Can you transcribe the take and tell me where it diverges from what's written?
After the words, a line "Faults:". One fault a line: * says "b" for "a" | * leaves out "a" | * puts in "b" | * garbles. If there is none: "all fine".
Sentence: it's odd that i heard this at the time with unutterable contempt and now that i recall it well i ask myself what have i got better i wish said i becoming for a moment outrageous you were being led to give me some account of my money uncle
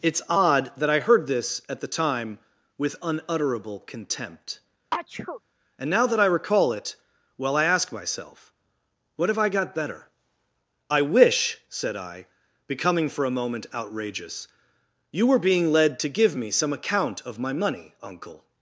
it's odd that i heard this at the time with unutterable contempt and now that i recall it well i ask myself what have i got better i wish said i becoming for a moment outrageous you were being led to give me some account of my money uncle
Faults:
all fine